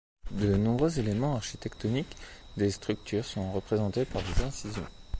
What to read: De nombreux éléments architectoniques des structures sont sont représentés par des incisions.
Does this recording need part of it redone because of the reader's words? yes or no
yes